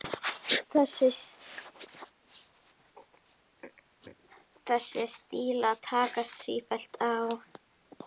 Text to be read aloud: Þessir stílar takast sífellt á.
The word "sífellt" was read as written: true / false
true